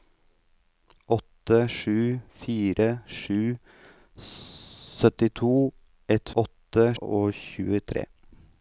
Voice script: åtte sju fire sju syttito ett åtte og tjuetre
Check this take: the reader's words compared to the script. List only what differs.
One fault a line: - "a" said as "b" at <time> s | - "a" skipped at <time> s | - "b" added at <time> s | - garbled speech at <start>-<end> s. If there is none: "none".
none